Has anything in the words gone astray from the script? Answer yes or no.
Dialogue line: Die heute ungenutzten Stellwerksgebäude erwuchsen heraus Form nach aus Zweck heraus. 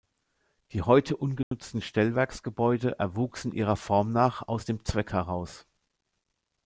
yes